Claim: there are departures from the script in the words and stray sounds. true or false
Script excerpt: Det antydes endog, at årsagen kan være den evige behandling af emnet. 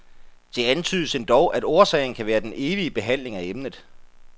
false